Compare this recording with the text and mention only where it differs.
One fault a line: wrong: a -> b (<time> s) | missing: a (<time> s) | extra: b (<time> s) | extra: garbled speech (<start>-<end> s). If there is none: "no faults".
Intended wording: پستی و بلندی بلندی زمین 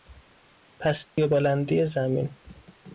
missing: بلندی (1.8 s)